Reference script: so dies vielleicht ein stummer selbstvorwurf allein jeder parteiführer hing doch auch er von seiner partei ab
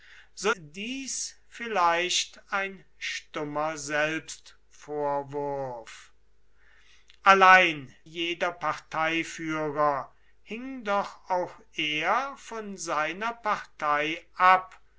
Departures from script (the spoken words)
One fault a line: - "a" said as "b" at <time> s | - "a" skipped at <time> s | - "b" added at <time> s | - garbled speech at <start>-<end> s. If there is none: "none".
none